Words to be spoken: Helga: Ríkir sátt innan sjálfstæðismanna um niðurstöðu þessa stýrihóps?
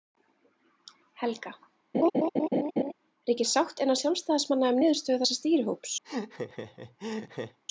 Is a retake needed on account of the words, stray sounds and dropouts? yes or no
yes